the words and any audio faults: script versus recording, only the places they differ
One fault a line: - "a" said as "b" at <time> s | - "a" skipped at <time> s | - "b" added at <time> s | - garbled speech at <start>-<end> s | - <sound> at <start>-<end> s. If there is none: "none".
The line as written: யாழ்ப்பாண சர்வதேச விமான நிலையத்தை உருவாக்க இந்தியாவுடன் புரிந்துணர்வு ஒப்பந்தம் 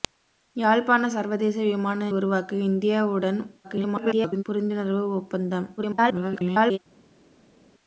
- "நிலையத்தை" skipped at 2.1 s
- garbled speech at 3.6-4.4 s
- garbled speech at 5.8-6.8 s